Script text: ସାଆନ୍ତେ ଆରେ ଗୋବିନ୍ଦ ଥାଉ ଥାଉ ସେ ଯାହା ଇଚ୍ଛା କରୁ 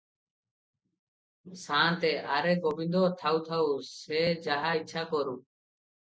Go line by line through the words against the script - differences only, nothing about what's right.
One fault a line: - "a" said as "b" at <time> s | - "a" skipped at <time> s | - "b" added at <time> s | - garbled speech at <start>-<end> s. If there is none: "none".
none